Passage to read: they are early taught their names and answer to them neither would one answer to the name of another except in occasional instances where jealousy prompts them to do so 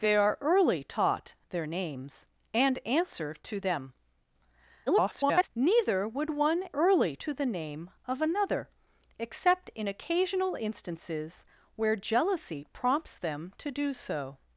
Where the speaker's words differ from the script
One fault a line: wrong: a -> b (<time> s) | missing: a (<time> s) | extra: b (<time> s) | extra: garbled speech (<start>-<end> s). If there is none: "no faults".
extra: garbled speech (4.9-5.5 s)
wrong: answer -> early (6.7 s)